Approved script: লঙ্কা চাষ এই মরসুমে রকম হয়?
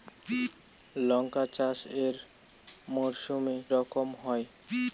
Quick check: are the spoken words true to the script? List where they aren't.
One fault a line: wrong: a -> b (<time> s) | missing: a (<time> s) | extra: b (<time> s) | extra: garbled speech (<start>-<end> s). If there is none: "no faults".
no faults